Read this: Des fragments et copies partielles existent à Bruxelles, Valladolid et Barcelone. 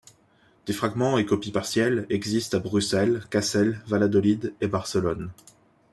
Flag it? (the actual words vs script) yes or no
yes